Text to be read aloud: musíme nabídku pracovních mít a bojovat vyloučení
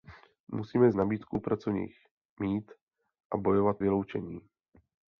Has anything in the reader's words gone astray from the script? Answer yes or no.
no